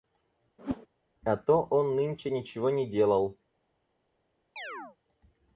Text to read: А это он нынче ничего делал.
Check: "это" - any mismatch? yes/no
yes